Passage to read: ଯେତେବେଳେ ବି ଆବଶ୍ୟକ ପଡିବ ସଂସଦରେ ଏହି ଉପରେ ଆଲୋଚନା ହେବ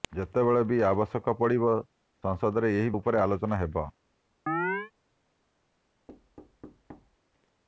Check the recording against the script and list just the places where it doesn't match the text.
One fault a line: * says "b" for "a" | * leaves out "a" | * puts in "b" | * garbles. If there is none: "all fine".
all fine